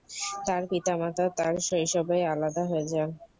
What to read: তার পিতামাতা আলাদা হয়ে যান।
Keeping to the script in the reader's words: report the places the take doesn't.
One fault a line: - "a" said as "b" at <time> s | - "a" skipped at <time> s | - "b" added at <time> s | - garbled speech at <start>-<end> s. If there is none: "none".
- "তার শৈশবেই" added at 1.4 s